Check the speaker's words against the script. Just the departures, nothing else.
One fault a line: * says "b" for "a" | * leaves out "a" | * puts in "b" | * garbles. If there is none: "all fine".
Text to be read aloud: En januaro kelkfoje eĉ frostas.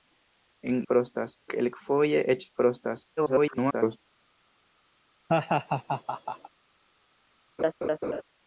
* says "frostas" for "januaro"
* garbles